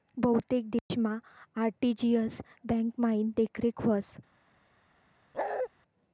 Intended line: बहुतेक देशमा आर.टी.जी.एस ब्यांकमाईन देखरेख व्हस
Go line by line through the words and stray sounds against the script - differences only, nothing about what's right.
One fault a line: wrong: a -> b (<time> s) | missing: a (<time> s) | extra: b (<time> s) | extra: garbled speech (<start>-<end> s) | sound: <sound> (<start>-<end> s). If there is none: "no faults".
sound: dropout (0.8-0.9 s)
sound: bark (5.3-5.7 s)